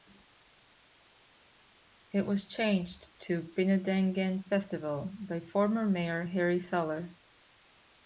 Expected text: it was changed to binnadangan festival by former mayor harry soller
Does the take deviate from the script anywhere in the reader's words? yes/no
no